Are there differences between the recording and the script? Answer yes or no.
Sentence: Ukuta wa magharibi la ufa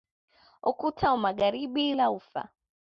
no